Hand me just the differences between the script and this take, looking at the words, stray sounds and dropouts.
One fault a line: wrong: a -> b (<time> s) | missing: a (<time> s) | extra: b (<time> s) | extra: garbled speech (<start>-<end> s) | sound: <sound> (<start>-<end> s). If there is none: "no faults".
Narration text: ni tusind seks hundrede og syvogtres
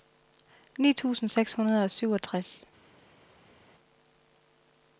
no faults